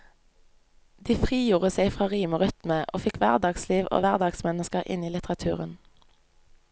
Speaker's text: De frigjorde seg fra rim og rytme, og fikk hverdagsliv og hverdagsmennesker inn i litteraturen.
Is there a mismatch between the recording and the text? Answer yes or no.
no